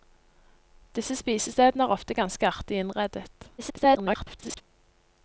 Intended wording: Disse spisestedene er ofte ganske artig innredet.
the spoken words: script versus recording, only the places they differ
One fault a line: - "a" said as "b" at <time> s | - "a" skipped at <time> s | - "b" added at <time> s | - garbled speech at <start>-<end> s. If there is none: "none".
- garbled speech at 3.6-4.6 s